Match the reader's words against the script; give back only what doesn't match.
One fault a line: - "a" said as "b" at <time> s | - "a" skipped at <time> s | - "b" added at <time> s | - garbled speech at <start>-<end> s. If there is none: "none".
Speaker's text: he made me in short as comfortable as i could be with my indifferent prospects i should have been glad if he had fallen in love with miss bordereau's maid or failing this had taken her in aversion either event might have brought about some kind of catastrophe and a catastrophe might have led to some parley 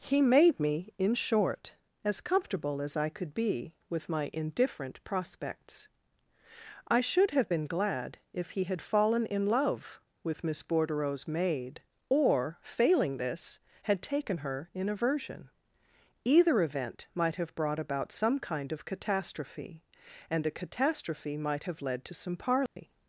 none